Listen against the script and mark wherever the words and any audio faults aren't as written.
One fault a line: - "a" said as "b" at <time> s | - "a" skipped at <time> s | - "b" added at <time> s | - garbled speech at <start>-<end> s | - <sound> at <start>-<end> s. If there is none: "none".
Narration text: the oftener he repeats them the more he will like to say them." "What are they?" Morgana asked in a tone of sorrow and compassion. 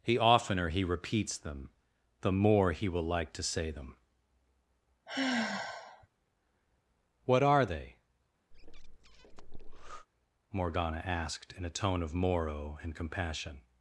- sigh at 5.1-6.1 s
- breath at 8.5-10.1 s
- "sorrow" said as "morrow" at 12.1 s